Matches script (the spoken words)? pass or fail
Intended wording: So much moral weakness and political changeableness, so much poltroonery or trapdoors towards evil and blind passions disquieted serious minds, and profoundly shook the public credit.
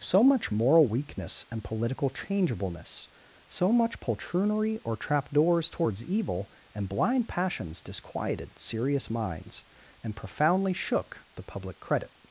pass